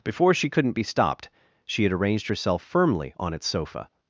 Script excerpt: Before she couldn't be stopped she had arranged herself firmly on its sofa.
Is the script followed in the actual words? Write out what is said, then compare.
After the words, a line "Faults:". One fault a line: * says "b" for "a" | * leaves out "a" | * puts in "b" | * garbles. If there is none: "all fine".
Before she couldn't be stopped she had arranged herself firmly on its sofa.
Faults:
all fine